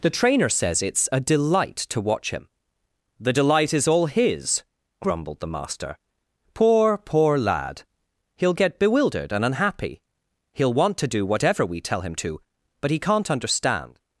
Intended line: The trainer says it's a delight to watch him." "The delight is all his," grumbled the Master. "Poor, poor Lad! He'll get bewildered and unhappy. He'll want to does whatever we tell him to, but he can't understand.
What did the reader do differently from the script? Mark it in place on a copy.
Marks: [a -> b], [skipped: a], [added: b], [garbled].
The trainer says it's a delight to watch him." "The delight is all his," grumbled the Master. "Poor, poor Lad! He'll get bewildered and unhappy. He'll want to [does -> do] whatever we tell him to, but he can't understand.